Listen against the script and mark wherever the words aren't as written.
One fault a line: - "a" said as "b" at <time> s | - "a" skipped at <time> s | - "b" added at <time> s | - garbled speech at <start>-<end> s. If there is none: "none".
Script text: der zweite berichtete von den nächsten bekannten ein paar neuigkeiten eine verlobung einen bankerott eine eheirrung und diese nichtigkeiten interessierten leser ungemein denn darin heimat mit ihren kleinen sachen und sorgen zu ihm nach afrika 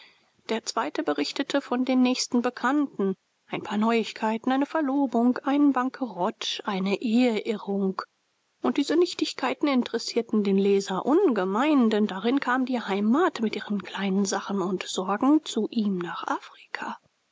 - "den" added at 10.4 s
- "kam die" added at 12.4 s